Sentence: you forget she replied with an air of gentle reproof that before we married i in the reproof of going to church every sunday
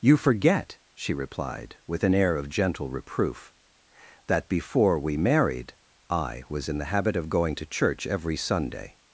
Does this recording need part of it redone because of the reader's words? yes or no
yes